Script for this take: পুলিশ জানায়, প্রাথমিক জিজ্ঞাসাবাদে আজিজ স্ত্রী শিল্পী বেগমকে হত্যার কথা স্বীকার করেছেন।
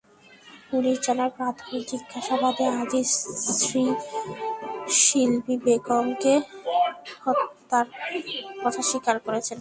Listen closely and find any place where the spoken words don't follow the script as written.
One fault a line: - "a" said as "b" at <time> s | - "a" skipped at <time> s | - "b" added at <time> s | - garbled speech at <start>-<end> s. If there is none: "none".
none